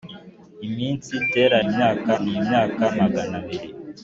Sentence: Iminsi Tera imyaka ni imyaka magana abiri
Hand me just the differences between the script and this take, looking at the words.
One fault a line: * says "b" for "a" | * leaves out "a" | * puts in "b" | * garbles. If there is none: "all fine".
all fine